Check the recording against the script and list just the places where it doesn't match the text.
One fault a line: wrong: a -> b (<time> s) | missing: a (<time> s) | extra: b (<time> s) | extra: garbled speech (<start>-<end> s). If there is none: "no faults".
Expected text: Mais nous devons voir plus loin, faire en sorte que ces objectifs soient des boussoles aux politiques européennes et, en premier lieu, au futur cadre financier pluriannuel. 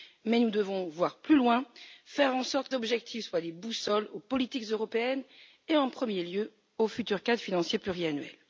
missing: que ces (2.7 s)